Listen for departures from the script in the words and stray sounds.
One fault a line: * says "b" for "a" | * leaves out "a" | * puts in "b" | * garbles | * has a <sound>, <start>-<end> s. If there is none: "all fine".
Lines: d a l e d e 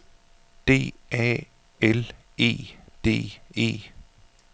all fine